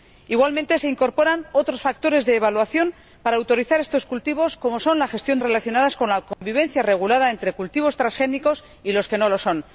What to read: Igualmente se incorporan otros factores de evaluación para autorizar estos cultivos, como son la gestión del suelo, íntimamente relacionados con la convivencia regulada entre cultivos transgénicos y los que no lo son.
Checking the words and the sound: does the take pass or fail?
fail